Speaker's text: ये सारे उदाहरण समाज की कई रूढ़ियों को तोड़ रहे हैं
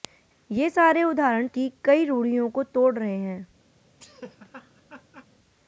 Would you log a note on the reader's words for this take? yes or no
yes